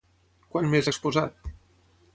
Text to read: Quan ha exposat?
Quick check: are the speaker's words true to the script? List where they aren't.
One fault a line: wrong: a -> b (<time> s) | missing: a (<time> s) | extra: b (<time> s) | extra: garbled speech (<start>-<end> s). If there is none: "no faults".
extra: més (0.7 s)